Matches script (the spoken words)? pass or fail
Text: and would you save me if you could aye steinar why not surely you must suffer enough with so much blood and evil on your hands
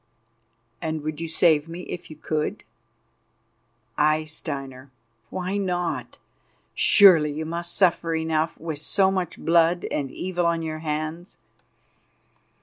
pass